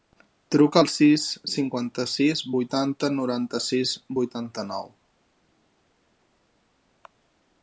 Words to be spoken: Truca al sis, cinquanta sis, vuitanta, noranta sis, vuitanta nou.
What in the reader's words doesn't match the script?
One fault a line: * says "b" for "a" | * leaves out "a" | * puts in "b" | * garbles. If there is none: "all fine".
all fine